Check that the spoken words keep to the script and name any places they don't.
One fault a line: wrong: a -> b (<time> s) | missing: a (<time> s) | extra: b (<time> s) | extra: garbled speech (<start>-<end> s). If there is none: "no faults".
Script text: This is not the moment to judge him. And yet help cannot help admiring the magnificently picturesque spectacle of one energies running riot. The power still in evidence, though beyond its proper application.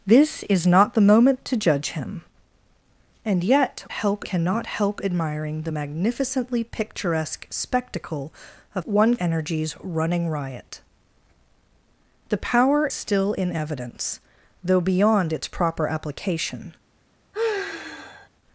no faults